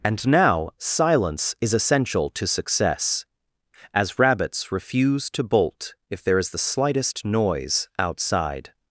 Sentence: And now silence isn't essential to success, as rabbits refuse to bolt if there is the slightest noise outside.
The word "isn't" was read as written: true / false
false